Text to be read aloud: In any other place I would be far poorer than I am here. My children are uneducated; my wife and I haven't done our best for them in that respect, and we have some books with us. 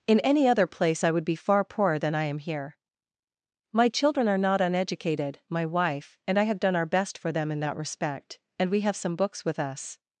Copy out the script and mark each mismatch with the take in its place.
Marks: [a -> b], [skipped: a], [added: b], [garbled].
In any other place I would be far poorer than I am here. My children are [added: not] uneducated; my wife and I [haven't -> have] done our best for them in that respect, and we have some books with us.